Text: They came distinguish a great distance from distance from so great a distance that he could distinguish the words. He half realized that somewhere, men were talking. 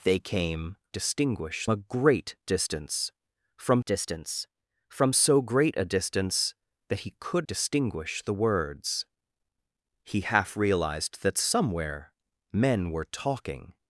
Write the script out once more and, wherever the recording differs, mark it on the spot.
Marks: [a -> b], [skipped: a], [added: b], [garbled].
They came distinguish a great distance from distance from so great a distance that he could distinguish the words. He half realized that somewhere, men were talking.